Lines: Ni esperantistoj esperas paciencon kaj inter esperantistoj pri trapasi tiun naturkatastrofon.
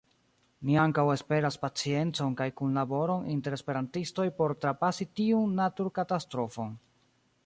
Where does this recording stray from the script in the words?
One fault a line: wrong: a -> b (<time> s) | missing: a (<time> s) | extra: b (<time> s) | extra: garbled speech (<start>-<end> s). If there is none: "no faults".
wrong: esperantistoj -> ankaŭ (0.8 s)
extra: kunlaboron (2.6 s)
wrong: pri -> por (4.4 s)